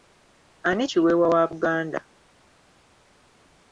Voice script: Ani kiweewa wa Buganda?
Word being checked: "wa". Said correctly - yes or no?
yes